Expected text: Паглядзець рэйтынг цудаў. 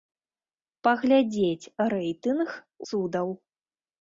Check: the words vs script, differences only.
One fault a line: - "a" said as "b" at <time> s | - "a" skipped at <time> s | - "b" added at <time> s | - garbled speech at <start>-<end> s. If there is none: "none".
none